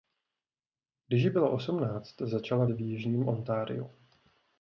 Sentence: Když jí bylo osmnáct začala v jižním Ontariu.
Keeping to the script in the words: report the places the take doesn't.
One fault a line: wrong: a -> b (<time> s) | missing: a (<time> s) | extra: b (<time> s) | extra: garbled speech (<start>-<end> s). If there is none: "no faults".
no faults